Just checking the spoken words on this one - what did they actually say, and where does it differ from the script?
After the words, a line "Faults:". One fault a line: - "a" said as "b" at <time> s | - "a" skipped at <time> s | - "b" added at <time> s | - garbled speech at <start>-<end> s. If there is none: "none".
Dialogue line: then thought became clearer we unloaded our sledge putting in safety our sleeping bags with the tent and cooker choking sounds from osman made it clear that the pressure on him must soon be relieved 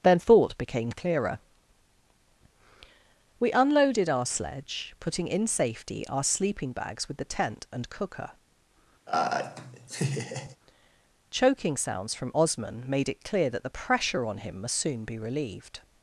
then thought became clearer we unloaded our sledge putting in safety our sleeping bags with the tent and cooker choking sounds from osman made it clear that the pressure on him must soon be relieved
Faults:
none